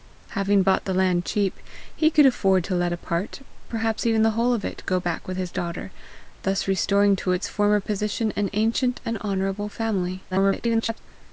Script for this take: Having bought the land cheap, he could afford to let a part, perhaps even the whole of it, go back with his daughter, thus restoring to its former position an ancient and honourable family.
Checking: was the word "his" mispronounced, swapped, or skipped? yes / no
no